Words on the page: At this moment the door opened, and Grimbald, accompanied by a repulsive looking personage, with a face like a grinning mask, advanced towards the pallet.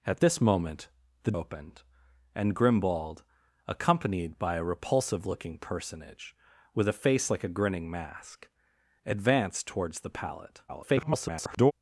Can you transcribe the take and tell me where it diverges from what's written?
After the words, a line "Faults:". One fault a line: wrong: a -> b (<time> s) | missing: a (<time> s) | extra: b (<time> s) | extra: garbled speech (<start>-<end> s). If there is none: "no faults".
At this moment the opened, and Grimbald, accompanied by a repulsive looking personage, with a face like a grinning mask, advanced towards the pallet. [garbled]
Faults:
missing: door (1.3 s)
extra: garbled speech (10.7-11.7 s)